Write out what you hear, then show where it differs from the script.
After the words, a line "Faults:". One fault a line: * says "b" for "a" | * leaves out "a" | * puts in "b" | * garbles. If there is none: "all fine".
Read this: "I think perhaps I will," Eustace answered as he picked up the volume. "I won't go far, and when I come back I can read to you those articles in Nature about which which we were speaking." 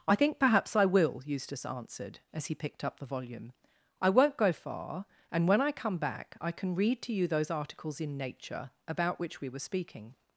"I think perhaps I will," Eustace answered as he picked up the volume. "I won't go far, and when I come back I can read to you those articles in Nature about which we were speaking."
Faults:
* leaves out "which"